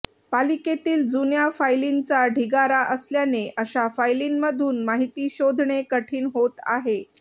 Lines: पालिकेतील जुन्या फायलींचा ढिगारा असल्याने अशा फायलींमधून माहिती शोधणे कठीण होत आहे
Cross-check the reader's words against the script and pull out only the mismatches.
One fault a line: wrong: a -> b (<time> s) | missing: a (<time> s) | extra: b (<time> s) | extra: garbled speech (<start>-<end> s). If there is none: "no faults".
no faults